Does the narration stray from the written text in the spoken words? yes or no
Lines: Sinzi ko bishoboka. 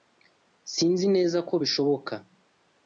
yes